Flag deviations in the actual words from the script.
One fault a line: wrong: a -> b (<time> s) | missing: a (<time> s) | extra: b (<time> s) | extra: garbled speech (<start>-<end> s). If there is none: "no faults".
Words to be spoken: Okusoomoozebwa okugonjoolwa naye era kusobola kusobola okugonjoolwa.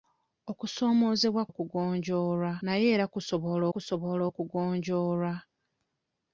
no faults